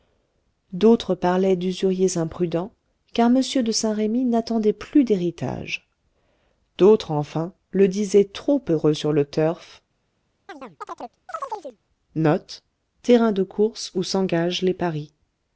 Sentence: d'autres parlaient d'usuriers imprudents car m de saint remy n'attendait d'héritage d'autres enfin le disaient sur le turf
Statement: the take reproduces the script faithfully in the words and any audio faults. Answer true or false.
false